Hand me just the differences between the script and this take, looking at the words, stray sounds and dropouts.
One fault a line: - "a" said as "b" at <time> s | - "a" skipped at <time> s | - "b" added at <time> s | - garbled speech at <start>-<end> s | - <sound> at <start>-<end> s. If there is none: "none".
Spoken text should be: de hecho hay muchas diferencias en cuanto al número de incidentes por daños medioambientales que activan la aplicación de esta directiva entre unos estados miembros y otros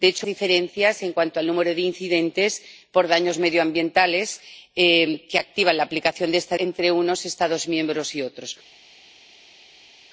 - "hay muchas" skipped at 0.3 s
- "directiva" skipped at 6.6 s